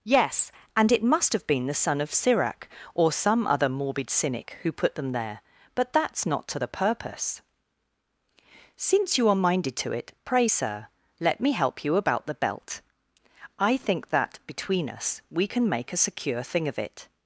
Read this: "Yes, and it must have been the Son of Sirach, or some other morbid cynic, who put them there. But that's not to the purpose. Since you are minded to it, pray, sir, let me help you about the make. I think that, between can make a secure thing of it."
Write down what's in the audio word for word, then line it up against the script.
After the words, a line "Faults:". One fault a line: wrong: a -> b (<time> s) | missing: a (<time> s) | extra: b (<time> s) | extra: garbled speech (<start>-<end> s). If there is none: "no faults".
"Yes, and it must have been the Son of Sirach, or some other morbid cynic, who put them there. But that's not to the purpose. Since you are minded to it, pray, sir, let me help you about the belt. I think that, between us, we can make a secure thing of it."
Faults:
wrong: make -> belt (12.3 s)
extra: us we (14.9 s)